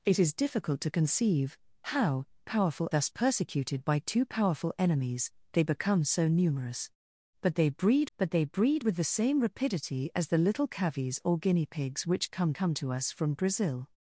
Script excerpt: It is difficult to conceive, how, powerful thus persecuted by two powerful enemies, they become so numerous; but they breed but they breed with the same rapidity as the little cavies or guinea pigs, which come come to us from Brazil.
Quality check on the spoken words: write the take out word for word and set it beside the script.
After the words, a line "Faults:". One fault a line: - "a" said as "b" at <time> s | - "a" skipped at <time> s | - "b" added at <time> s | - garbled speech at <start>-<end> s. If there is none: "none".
It is difficult to conceive, how, powerful thus persecuted by two powerful enemies, they become so numerous; but they breed but they breed with the same rapidity as the little cavies or guinea pigs, which come come to us from Brazil.
Faults:
none